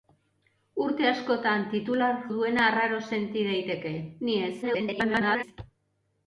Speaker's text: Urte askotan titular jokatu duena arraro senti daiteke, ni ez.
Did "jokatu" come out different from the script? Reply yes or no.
yes